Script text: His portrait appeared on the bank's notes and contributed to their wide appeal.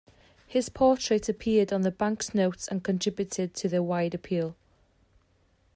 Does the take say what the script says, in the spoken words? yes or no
yes